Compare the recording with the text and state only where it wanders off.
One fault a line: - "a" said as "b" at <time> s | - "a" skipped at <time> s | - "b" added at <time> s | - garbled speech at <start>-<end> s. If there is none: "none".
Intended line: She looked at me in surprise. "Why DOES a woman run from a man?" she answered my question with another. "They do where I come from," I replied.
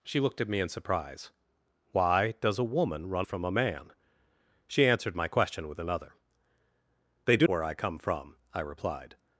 none